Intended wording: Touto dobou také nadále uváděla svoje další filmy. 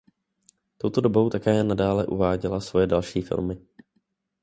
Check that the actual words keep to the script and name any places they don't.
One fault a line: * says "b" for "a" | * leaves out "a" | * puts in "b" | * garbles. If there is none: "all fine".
all fine